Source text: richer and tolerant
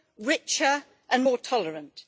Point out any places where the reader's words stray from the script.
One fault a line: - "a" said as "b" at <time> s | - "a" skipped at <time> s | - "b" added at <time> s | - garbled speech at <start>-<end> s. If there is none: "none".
- "more" added at 1.2 s